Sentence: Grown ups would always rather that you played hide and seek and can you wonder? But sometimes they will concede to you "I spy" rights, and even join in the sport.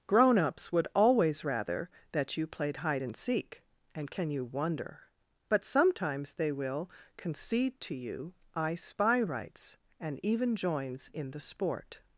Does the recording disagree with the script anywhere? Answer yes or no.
yes